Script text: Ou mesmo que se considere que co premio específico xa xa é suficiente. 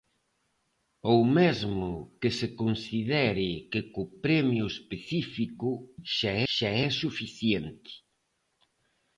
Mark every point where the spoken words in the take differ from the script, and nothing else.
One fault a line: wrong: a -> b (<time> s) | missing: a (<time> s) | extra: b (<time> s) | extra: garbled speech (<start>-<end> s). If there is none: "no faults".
no faults